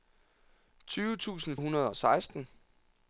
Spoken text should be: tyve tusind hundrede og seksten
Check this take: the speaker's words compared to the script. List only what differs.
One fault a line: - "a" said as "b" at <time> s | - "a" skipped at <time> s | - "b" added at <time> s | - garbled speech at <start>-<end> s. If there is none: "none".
none